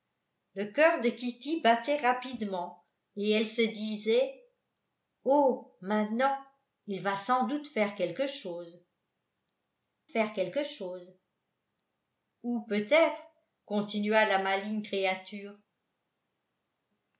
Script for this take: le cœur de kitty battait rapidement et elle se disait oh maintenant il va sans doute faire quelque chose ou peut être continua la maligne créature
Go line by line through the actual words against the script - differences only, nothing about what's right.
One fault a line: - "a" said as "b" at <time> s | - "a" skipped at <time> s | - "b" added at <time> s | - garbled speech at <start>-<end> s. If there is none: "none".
- "faire quelque chose" added at 10.1 s